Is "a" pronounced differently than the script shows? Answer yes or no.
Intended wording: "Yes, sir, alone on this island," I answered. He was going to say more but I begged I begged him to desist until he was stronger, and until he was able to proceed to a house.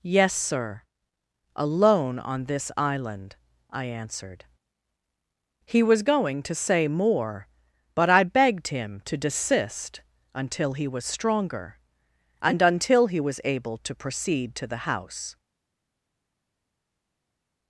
yes